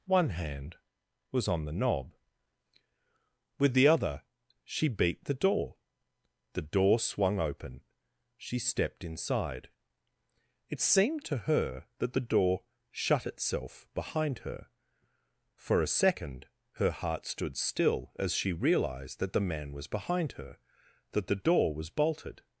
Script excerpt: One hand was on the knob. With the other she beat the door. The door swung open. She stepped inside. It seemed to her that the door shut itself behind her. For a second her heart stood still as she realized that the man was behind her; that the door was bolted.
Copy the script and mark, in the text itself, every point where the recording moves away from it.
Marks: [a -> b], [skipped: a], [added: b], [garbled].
One hand was on the knob. With the other she beat the door. The door swung open. She stepped inside. It seemed to her that the door shut itself behind her. For a second her heart stood still as she realized that the man was behind her; that the door was bolted.